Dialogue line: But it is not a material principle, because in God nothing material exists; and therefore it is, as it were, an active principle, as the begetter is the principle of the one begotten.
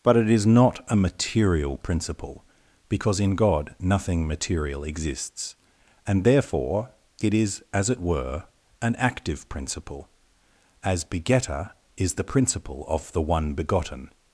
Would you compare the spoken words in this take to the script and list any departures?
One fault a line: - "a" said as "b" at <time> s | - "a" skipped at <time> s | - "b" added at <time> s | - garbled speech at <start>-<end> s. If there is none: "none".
- "the" skipped at 11.0 s